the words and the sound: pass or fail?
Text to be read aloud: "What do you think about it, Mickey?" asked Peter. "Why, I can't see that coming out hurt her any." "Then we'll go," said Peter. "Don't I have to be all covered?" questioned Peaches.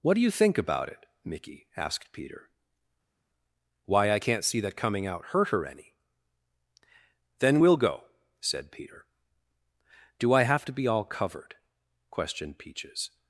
fail